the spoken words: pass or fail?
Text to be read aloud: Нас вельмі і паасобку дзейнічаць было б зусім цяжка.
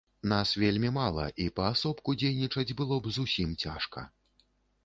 fail